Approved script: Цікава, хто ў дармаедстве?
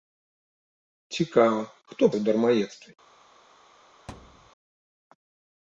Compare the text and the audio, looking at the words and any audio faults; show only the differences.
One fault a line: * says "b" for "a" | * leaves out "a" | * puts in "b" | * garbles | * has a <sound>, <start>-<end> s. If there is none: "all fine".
* has a thud, 4.1-4.5 s